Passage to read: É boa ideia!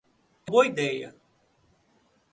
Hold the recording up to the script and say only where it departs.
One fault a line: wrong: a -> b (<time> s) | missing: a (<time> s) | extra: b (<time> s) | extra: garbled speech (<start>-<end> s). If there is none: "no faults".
no faults